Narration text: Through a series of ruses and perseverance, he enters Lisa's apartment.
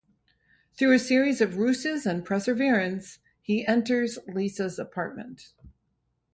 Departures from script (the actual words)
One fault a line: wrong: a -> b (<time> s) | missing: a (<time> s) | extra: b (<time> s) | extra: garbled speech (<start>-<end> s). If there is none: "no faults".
no faults